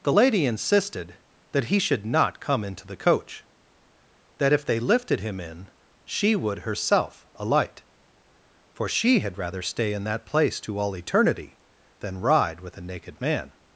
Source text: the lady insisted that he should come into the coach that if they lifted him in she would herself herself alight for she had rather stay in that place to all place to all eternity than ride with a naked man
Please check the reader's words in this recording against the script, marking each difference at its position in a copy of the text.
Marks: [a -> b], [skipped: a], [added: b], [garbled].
the lady insisted that he should [added: not] come into the coach that if they lifted him in she would herself [skipped: herself] alight for she had rather stay in that place to all [skipped: place to all] eternity than ride with a naked man